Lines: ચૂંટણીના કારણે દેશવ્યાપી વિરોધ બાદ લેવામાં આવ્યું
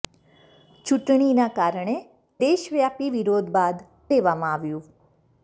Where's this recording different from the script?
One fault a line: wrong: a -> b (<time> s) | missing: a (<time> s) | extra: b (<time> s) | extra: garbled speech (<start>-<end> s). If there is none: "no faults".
no faults